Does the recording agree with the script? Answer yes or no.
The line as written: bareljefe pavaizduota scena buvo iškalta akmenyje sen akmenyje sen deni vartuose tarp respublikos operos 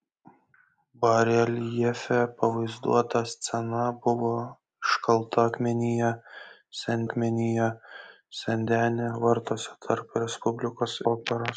yes